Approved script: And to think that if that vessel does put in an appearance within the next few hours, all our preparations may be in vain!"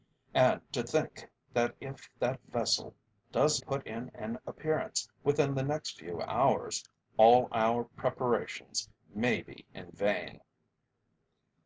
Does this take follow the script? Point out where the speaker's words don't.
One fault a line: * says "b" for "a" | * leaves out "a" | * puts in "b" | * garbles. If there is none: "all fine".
all fine